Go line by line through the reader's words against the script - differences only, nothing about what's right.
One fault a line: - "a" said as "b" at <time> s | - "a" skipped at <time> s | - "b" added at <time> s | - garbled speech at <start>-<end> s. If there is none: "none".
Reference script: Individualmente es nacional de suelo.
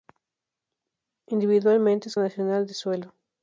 none